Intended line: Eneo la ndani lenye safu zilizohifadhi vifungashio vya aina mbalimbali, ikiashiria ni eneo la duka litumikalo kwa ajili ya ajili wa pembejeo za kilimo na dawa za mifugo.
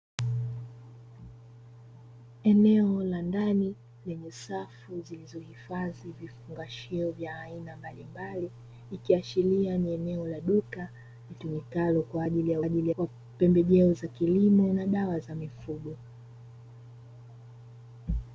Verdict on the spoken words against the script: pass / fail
pass